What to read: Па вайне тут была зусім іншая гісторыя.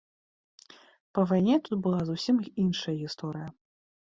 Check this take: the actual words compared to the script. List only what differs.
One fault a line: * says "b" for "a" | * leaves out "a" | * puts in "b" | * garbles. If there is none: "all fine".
all fine